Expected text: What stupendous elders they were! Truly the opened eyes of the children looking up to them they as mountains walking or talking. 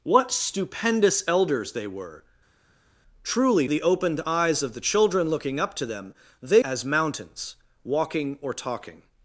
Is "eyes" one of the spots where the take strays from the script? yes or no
no